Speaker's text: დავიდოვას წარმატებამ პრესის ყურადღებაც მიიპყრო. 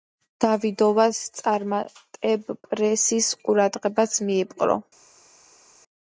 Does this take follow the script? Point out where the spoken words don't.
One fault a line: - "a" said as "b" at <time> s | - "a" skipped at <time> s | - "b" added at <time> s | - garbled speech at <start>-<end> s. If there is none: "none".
none